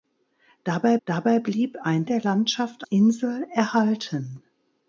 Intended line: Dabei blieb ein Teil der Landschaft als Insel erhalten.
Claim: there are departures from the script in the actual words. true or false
true